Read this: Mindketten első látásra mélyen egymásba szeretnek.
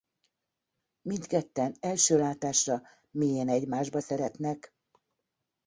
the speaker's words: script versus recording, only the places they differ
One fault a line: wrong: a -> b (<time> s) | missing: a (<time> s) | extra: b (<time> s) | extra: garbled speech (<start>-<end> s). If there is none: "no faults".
no faults